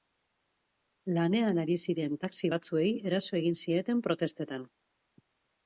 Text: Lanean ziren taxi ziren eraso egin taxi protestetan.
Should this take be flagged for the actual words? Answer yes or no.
yes